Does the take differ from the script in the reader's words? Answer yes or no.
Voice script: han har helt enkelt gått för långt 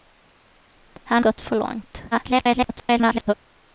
yes